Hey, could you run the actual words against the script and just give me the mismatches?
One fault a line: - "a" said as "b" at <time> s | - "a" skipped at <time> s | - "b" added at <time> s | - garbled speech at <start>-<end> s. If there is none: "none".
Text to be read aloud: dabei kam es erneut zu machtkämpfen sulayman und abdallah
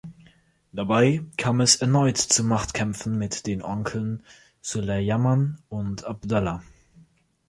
- "mit den onkeln" added at 3.2 s